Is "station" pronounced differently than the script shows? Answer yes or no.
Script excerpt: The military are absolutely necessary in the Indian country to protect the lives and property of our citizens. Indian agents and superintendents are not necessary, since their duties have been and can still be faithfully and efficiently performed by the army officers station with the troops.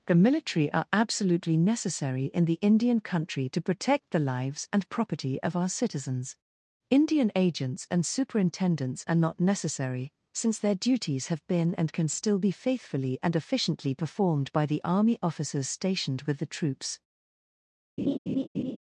yes